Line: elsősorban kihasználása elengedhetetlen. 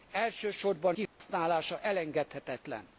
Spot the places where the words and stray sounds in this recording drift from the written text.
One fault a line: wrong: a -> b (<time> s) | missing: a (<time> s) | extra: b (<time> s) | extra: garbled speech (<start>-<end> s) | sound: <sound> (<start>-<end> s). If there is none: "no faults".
sound: dropout (1.1-1.2 s)